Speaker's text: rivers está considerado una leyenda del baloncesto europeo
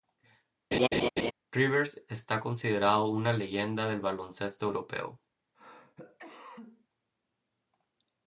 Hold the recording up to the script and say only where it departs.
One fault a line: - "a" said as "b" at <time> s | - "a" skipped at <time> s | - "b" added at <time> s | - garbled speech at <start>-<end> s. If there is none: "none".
none